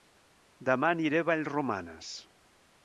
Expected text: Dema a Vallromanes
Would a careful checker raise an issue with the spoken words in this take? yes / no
yes